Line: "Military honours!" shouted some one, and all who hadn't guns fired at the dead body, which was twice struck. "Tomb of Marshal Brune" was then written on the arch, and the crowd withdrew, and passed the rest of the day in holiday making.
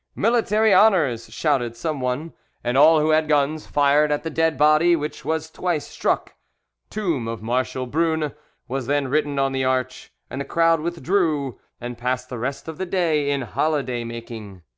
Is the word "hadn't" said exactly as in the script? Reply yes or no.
no